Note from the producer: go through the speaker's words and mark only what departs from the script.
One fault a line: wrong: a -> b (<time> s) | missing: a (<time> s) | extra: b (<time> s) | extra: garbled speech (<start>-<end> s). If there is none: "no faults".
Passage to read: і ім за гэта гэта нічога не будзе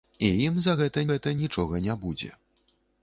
no faults